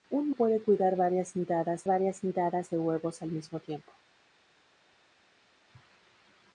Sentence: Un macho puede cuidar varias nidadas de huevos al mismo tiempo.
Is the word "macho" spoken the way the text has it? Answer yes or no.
no